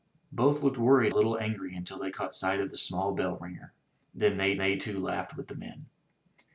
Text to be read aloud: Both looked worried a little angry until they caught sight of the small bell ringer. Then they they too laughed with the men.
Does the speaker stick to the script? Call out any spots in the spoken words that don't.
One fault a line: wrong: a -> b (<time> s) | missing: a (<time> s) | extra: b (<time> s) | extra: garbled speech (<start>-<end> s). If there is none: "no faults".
no faults